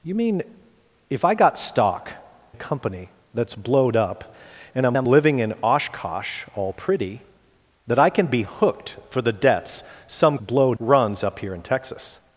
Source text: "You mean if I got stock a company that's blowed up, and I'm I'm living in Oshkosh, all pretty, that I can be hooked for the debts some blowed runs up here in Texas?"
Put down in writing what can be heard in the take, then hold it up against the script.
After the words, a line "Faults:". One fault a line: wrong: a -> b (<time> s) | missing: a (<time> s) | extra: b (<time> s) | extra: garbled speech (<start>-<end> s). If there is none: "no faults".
"You mean if I got stock a company that's blowed up, and I'm I'm living in Oshkosh, all pretty, that I can be hooked for the debts some blowed runs up here in Texas?"
Faults:
no faults